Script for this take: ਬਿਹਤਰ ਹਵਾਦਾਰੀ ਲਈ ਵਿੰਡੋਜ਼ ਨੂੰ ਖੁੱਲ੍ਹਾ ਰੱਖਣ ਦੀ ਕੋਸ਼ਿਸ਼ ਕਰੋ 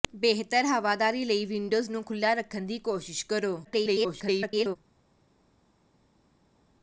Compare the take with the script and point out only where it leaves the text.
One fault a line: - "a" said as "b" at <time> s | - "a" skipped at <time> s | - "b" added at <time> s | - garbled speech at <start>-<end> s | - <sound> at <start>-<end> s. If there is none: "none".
- garbled speech at 3.6-4.8 s